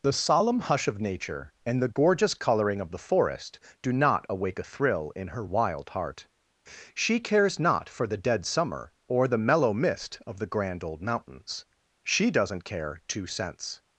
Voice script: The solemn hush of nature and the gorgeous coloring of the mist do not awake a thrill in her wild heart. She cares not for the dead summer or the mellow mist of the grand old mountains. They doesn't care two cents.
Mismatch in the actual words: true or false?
true